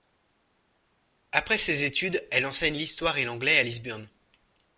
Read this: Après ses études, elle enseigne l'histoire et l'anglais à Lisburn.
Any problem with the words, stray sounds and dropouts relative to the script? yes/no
no